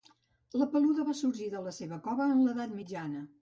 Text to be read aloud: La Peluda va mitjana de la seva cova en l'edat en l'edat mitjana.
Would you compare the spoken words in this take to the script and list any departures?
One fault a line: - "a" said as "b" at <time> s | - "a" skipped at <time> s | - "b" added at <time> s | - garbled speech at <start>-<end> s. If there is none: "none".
- "mitjana" said as "sorgir" at 1.2 s
- "en l'edat" skipped at 2.8 s